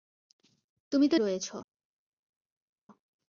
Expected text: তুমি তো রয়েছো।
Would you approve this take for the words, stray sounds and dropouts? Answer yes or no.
yes